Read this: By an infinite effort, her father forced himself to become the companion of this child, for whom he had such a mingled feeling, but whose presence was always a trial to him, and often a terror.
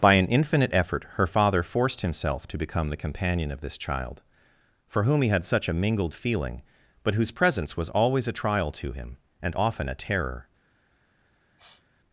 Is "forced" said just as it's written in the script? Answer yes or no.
yes